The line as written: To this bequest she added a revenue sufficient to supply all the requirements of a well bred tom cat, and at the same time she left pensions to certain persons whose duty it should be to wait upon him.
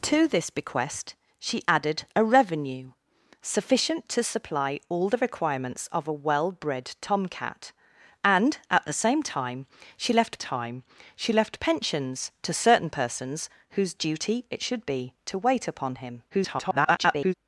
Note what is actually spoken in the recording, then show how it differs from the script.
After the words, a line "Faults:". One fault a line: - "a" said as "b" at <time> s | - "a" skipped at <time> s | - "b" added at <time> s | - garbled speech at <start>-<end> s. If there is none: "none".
To this bequest she added a revenue sufficient to supply all the requirements of a well bred tom cat, and at the same time she left time she left pensions to certain persons whose duty it should be to wait upon him. [garbled]
Faults:
- "time she left" added at 10.4 s
- garbled speech at 16.3-17.3 s